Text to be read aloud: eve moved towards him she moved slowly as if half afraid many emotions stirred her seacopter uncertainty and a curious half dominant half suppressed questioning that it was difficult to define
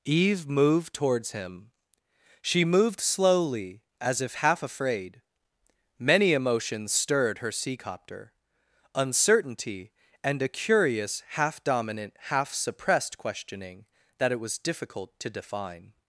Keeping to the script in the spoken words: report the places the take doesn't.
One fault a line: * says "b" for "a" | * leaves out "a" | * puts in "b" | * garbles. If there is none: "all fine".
all fine